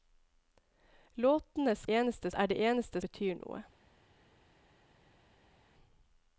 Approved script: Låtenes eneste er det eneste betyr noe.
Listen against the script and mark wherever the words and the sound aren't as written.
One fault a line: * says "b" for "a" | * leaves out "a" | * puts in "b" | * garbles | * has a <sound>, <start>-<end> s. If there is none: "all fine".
all fine